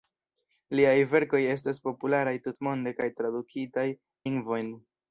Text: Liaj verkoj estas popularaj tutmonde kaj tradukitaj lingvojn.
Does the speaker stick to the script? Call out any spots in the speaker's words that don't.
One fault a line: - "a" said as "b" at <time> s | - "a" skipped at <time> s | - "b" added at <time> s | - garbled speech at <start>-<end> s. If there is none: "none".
none